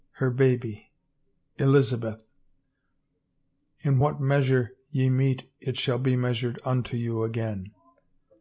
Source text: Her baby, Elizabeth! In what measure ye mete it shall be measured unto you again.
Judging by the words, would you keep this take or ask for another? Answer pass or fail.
pass